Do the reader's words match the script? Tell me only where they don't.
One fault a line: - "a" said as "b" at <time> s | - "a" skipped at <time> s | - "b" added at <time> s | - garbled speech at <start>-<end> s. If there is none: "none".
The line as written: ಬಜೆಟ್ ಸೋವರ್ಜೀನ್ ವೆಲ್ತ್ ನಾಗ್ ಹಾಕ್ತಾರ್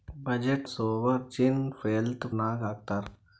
none